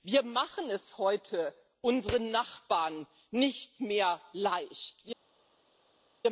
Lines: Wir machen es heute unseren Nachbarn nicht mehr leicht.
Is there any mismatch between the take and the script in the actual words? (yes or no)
no